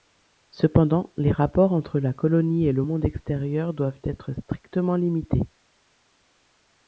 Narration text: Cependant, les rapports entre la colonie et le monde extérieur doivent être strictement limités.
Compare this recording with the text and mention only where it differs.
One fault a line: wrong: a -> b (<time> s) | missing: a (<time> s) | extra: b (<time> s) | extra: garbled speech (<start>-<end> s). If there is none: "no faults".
no faults